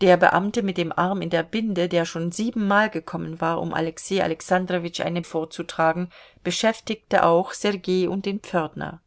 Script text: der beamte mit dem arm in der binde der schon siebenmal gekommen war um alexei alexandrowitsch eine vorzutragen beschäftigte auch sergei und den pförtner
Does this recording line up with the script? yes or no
yes